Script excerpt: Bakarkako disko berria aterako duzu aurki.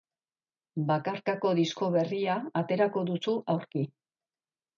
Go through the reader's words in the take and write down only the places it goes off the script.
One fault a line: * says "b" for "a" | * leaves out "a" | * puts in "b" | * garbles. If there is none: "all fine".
all fine